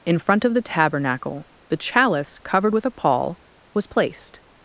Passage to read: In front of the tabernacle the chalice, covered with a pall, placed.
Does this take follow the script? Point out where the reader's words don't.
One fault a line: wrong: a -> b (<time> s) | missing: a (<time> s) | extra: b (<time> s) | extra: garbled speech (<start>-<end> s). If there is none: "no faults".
extra: was (3.7 s)